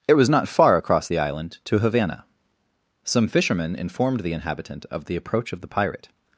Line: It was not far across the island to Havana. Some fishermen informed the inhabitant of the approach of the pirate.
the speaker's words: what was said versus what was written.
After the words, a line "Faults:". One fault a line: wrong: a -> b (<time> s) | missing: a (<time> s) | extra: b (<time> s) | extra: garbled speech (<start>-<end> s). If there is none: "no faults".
It was not far across the island to Havana. Some fishermen informed the inhabitant of the approach of the pirate.
Faults:
no faults